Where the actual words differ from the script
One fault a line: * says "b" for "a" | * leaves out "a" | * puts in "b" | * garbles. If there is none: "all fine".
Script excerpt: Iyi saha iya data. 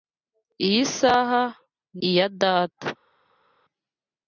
all fine